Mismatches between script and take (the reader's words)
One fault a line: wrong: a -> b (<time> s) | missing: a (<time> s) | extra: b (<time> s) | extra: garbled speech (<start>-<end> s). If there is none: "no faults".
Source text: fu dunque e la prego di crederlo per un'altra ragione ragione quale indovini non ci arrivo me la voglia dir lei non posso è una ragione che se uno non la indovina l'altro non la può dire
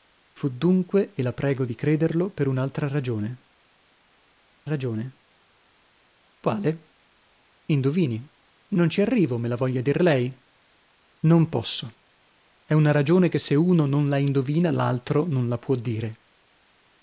no faults